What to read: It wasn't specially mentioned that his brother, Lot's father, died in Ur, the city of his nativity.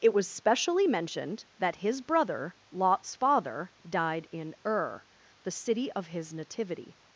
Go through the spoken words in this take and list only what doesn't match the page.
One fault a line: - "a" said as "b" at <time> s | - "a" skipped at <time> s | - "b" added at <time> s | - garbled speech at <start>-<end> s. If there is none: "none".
- "wasn't" said as "was" at 0.1 s